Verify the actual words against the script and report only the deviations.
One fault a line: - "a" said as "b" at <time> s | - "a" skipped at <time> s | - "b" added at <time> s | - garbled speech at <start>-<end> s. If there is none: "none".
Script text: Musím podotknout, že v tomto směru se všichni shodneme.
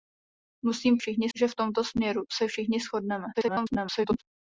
- "podotknout" said as "všichni" at 1.0 s
- garbled speech at 3.3-4.2 s